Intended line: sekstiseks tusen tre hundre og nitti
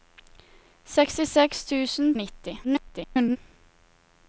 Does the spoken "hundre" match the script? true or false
false